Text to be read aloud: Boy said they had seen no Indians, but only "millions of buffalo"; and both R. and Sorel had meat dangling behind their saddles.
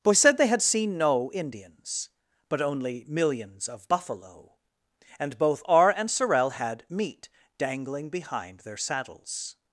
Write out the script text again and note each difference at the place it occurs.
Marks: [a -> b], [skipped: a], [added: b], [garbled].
Boy said they had seen no Indians, but only "millions of buffalo"; and both R. and Sorel had meat dangling behind their saddles.